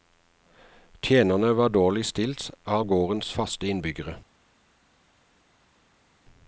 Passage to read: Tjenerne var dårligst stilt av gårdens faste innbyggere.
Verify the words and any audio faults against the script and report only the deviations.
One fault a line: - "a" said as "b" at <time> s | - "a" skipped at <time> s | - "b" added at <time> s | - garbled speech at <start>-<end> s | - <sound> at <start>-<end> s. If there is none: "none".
none